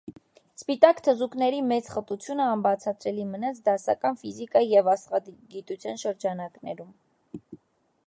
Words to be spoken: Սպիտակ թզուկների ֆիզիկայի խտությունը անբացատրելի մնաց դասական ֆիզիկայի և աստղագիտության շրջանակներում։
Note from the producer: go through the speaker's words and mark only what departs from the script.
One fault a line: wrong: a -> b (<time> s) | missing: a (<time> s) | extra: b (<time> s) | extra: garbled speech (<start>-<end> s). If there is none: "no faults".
wrong: ֆիզիկայի -> մեծ (1.7 s)